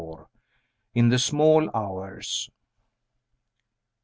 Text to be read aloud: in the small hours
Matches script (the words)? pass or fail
pass